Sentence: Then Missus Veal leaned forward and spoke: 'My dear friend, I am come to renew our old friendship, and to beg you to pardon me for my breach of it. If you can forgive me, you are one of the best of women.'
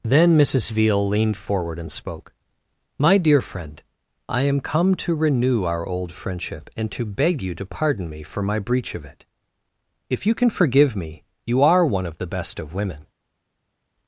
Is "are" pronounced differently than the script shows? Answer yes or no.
no